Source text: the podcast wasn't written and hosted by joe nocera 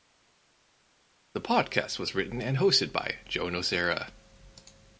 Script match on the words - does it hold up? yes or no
no